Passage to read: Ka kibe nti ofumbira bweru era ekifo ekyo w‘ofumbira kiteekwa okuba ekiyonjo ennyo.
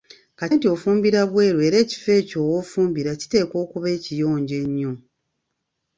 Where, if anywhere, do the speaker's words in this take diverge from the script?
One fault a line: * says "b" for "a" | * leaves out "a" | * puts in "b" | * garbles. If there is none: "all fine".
* leaves out "kibe"